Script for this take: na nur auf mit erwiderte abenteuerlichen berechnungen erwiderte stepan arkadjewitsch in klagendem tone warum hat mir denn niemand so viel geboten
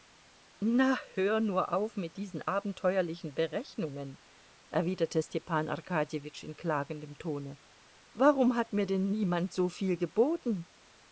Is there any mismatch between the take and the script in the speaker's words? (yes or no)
yes